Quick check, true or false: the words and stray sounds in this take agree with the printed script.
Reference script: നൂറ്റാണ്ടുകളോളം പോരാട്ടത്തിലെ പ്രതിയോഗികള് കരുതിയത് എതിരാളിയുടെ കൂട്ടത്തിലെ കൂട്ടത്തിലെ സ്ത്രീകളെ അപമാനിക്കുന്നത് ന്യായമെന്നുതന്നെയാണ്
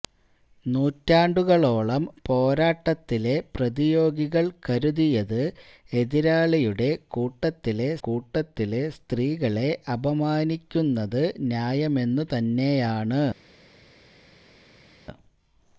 true